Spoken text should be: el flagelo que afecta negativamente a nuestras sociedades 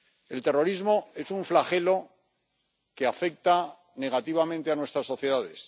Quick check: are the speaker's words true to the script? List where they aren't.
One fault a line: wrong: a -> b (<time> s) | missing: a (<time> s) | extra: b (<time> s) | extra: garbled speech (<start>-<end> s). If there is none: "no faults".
extra: terrorismo es un (0.4 s)